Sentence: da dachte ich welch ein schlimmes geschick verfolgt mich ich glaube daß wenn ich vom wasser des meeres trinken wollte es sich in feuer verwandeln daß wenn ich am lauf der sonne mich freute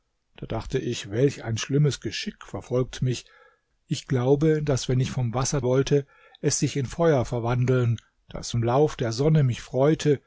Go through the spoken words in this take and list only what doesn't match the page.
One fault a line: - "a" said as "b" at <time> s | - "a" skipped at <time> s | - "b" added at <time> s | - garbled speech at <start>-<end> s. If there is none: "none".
- "des meeres trinken" skipped at 5.6 s
- "wenn ich" skipped at 8.5 s